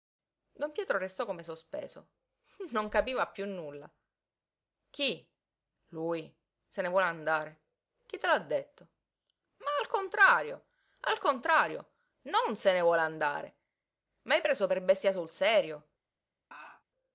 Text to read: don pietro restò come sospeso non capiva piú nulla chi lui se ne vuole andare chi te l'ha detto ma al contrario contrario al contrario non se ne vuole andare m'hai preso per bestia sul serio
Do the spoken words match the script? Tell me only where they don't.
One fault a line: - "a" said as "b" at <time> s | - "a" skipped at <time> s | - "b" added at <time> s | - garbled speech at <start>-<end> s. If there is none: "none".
- "contrario" skipped at 10.7 s